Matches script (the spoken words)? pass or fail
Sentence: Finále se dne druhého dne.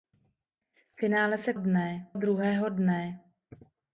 pass